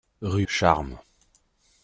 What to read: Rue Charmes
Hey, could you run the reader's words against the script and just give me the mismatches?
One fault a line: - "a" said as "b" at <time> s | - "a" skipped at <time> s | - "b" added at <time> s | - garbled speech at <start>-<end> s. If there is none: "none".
none